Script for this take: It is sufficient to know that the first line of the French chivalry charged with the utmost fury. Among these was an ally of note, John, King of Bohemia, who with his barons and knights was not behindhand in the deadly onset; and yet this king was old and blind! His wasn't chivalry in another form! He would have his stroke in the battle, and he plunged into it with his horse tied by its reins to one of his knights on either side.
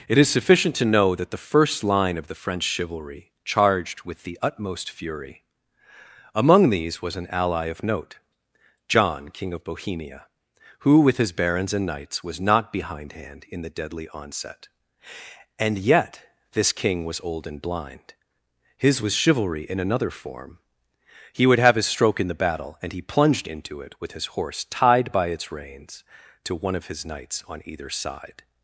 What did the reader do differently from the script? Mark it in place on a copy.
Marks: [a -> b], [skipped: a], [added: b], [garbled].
It is sufficient to know that the first line of the French chivalry charged with the utmost fury. Among these was an ally of note, John, King of Bohemia, who with his barons and knights was not behindhand in the deadly onset; and yet this king was old and blind! His [wasn't -> was] chivalry in another form! He would have his stroke in the battle, and he plunged into it with his horse tied by its reins to one of his knights on either side.